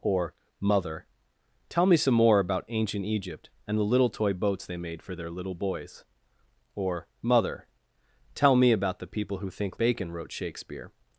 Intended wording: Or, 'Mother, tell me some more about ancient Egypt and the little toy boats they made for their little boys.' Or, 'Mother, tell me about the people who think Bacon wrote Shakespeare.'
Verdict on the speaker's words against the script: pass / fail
pass